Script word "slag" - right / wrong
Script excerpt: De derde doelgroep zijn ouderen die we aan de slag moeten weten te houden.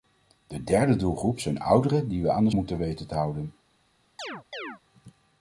wrong